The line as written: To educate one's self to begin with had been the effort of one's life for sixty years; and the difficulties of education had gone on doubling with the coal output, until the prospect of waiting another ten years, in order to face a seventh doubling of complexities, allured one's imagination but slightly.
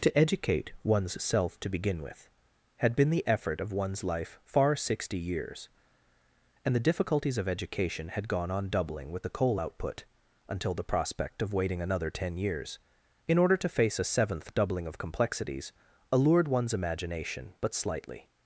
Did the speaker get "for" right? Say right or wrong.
wrong